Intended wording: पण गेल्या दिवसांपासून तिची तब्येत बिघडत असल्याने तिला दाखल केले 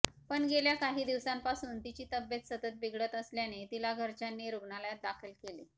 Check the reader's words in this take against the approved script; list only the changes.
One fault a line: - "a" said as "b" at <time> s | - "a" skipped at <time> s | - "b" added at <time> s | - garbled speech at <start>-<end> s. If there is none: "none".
- "काही" added at 0.8 s
- "सतत" added at 2.5 s
- "घरच्यांनी रुग्णालयात" added at 3.9 s